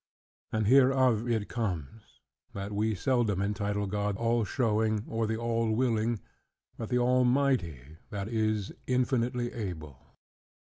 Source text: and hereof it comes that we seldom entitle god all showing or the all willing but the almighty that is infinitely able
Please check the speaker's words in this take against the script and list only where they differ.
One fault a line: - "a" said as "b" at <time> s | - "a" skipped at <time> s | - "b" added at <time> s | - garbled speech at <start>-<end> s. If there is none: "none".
none